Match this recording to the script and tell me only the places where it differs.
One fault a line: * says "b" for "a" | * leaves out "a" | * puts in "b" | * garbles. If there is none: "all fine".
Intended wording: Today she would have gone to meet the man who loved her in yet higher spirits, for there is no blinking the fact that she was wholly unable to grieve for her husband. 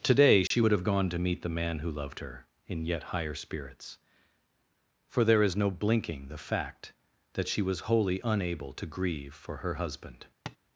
all fine